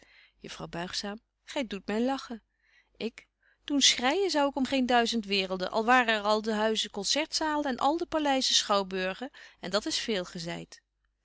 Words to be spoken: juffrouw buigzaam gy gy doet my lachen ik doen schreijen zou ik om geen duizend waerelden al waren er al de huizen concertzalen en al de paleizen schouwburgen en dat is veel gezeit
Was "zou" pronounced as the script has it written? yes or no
yes